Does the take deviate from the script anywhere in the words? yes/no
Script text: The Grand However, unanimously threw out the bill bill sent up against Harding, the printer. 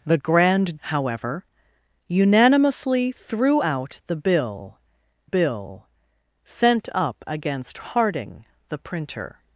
no